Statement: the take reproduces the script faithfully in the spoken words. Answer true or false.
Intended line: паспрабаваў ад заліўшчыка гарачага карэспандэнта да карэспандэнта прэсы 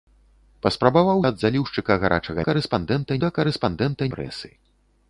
true